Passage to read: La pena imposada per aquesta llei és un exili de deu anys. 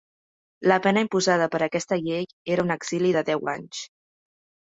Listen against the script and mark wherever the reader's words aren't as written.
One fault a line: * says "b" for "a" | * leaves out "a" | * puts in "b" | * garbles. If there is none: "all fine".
* says "era" for "és"